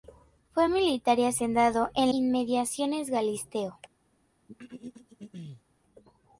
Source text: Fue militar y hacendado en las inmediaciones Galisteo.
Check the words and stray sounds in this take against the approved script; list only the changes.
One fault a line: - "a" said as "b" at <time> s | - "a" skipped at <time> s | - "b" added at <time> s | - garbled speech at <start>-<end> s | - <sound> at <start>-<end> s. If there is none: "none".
- "las" skipped at 2.1 s
- throat clearing at 4.5-5.6 s